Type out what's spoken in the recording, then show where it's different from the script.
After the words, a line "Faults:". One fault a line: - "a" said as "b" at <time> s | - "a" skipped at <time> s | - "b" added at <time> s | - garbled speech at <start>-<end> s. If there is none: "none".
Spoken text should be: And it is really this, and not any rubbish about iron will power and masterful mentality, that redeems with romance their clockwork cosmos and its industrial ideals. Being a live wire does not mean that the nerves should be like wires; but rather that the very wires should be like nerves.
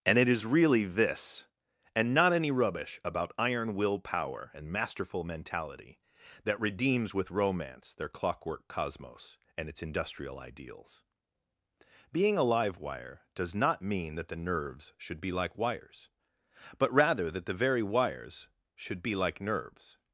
And it is really this, and not any rubbish about iron will power and masterful mentality, that redeems with romance their clockwork cosmos and its industrial ideals. Being a live wire does not mean that the nerves should be like wires; but rather that the very wires should be like nerves.
Faults:
none